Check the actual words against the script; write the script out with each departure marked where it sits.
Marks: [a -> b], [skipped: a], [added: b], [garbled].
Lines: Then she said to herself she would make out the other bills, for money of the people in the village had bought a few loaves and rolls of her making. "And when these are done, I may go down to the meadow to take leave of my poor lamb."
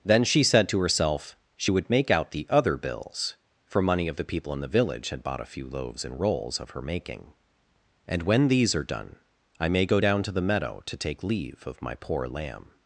Then she said to herself she would make out the other bills, for money of the people in the village had bought a few loaves and rolls of her making. "And when these are done, I may go down to the meadow to take leave of my poor lamb."